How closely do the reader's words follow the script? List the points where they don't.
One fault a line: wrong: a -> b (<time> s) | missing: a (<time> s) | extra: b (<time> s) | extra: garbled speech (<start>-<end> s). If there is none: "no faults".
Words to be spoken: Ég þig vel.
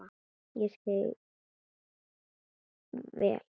no faults